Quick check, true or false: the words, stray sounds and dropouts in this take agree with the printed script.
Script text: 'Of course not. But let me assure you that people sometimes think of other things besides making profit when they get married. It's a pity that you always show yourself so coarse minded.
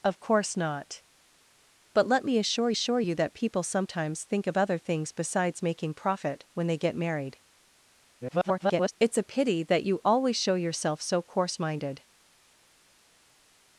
false